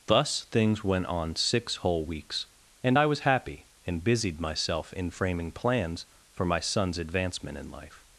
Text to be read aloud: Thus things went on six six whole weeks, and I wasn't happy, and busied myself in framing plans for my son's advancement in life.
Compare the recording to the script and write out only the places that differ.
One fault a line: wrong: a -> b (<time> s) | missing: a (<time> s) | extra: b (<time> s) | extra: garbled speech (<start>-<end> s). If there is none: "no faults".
missing: six (1.8 s)
wrong: wasn't -> was (3.1 s)